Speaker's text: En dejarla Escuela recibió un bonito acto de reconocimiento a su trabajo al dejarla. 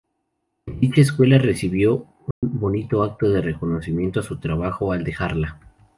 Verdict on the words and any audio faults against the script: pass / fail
fail